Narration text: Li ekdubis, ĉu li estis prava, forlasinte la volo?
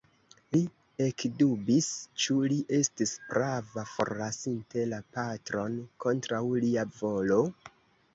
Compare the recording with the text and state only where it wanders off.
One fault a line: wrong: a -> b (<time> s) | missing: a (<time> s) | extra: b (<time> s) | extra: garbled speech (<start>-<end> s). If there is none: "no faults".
extra: patron kontraŭ lia (5.2 s)